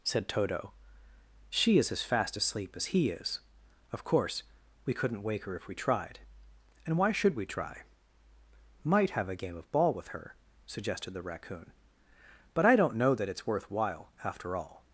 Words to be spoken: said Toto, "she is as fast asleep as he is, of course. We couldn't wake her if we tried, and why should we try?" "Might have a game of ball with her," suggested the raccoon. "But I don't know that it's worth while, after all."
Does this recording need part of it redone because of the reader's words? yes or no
no